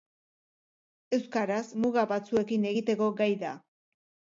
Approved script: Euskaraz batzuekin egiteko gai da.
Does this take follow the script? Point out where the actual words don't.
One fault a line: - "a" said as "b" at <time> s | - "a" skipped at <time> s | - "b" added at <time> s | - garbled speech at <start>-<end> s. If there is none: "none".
- "muga" added at 1.8 s